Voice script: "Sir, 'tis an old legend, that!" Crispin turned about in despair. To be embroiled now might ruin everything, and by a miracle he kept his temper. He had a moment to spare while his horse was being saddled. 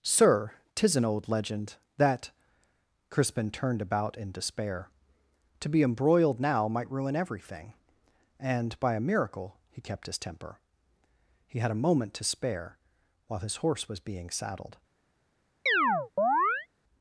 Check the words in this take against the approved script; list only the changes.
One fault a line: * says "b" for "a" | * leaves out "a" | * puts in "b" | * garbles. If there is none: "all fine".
all fine